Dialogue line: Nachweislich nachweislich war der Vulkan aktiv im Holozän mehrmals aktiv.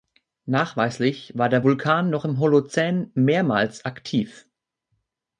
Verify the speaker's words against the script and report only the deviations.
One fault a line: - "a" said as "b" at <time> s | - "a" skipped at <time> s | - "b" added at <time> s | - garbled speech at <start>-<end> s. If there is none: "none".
- "nachweislich" skipped at 1.3 s
- "aktiv" said as "noch" at 2.1 s